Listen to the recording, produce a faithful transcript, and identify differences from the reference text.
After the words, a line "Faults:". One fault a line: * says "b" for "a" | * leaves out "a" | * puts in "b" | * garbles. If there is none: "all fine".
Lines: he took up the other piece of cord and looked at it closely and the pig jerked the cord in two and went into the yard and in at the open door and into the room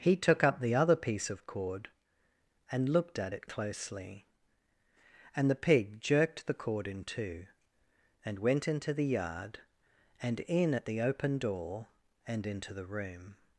he took up the other piece of cord and looked at it closely and the pig jerked the cord in two and went into the yard and in at the open door and into the room
Faults:
all fine